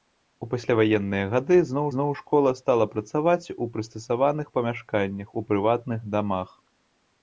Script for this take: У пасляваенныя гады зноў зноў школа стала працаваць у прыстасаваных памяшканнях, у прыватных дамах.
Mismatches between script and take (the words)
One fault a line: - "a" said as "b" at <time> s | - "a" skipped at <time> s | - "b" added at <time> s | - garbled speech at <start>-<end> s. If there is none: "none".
none